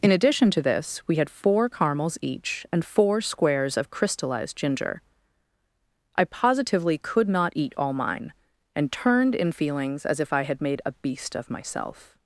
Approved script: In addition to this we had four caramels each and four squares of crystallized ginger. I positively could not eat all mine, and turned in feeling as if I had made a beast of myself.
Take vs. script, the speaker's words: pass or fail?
fail